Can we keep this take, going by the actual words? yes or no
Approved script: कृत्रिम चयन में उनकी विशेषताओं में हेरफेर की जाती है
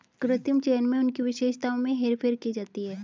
yes